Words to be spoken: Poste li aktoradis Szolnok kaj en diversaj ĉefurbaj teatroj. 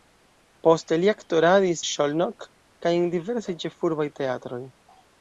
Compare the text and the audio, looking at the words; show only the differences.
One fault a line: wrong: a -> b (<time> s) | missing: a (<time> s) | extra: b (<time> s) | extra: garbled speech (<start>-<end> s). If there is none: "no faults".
no faults